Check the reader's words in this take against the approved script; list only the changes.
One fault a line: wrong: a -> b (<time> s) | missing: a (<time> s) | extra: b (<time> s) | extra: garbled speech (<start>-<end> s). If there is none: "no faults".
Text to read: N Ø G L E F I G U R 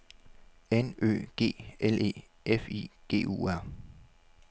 no faults